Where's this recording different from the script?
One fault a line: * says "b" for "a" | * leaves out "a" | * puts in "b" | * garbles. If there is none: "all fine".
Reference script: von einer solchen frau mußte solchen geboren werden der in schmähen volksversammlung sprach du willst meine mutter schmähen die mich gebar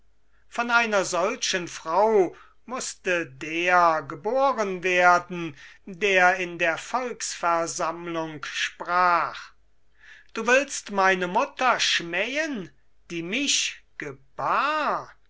* says "der" for "solchen"
* says "der" for "schmähen"